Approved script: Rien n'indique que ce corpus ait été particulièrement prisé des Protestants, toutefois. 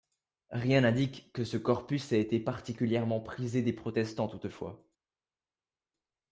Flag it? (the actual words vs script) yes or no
no